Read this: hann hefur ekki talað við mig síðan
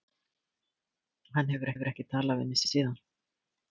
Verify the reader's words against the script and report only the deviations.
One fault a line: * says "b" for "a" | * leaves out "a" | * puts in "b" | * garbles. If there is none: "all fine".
* puts in "hefur"
* puts in "mig"